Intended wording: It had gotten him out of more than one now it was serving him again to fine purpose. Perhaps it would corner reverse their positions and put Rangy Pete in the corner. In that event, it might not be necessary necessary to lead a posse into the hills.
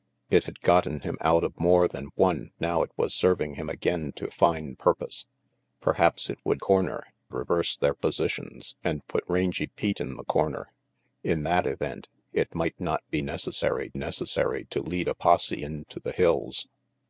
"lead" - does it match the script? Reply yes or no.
yes